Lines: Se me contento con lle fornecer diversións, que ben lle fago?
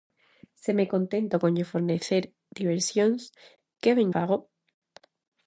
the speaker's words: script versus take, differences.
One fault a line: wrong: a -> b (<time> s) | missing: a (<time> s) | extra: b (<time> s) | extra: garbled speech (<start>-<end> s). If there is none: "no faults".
missing: lle (4.1 s)